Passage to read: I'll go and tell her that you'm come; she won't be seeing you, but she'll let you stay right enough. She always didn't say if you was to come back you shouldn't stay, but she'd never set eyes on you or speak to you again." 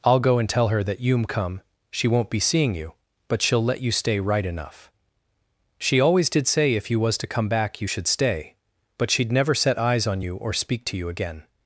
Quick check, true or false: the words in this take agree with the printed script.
false